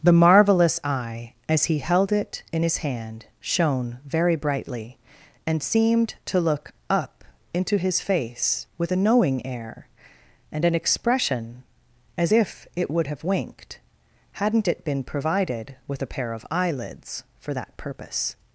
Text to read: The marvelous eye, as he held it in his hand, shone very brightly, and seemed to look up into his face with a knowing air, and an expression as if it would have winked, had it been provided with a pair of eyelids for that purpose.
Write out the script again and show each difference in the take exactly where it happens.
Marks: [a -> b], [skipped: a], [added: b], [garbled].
The marvelous eye, as he held it in his hand, shone very brightly, and seemed to look up into his face with a knowing air, and an expression as if it would have winked, [had -> hadn't] it been provided with a pair of eyelids for that purpose.